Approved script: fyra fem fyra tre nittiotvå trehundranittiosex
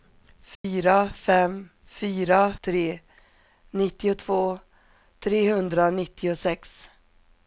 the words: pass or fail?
pass